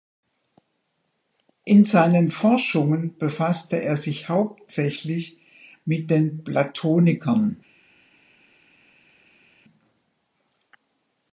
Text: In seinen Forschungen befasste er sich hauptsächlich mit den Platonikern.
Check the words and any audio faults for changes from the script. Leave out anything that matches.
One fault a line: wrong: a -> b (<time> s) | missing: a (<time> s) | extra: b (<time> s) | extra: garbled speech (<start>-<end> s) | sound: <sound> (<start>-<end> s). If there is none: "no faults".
no faults